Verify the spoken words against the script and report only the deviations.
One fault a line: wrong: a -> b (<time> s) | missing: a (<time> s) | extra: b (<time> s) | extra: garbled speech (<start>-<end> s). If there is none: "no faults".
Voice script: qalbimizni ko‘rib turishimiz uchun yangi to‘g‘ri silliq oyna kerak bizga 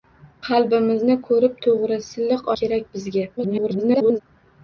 missing: turishimiz uchun yangi (1.6 s)
missing: oyna (2.5 s)
extra: garbled speech (3.4-4.2 s)